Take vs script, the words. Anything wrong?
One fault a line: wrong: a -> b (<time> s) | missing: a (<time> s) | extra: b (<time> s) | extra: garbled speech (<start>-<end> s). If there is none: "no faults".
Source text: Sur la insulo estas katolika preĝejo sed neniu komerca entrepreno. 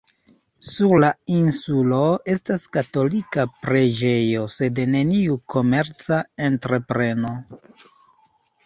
no faults